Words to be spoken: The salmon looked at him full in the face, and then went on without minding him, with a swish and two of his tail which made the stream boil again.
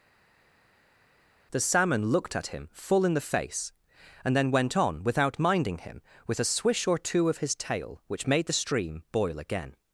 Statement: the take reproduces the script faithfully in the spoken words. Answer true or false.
false